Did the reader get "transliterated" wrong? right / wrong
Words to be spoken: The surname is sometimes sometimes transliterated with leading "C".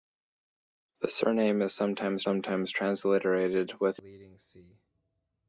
right